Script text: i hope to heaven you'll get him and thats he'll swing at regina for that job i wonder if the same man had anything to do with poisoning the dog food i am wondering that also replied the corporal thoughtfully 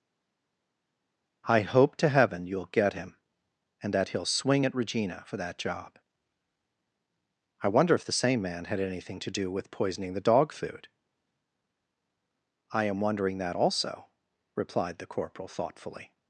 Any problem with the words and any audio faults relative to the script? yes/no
yes